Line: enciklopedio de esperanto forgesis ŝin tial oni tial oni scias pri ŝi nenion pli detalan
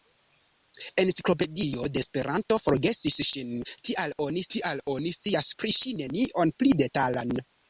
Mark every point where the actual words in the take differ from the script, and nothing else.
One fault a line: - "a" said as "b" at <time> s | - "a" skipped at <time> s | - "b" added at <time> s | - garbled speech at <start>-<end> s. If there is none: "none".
none